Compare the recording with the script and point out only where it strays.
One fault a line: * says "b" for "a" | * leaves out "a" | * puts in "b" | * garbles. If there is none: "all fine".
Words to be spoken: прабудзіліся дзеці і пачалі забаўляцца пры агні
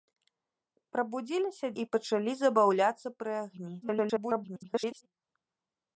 * leaves out "дзеці"
* garbles